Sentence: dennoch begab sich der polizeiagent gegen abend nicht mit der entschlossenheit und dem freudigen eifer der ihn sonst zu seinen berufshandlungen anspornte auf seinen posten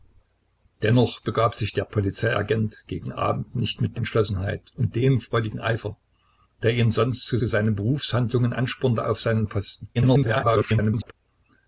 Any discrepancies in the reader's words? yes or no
yes